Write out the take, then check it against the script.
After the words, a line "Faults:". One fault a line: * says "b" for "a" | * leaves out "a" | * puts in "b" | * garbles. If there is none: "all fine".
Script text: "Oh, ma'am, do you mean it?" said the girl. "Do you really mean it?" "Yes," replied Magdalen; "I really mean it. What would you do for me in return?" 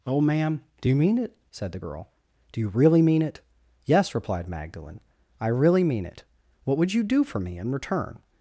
"Oh, ma'am, do you mean it?" said the girl. "Do you really mean it?" "Yes," replied Magdalen; "I really mean it. What would you do for me in return?"
Faults:
all fine